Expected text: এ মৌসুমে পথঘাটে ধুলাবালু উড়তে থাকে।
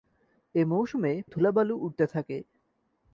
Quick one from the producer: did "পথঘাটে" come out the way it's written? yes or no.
no